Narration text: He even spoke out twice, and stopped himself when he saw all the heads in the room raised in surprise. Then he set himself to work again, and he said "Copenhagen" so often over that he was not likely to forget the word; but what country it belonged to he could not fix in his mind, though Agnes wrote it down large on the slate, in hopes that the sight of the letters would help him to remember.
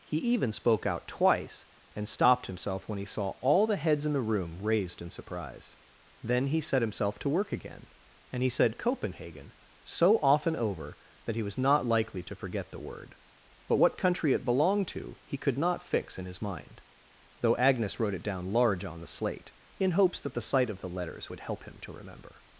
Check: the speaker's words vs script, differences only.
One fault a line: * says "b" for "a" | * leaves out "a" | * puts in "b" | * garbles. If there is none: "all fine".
all fine